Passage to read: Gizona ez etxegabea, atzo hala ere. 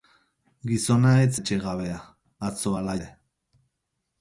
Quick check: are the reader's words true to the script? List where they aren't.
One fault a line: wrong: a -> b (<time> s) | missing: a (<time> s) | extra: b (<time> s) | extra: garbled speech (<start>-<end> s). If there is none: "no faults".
no faults